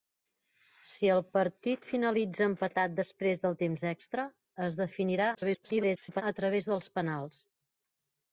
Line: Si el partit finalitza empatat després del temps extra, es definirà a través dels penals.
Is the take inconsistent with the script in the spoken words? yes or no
yes